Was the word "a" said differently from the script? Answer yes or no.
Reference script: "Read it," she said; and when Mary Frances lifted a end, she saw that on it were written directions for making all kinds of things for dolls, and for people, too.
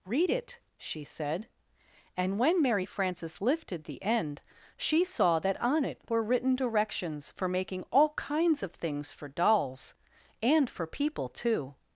yes